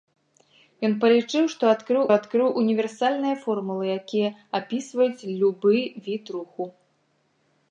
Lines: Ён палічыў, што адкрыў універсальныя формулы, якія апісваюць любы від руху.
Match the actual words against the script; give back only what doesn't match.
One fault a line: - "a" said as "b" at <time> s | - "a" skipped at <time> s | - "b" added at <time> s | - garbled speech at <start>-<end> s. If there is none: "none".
- "адкрыў" added at 2.2 s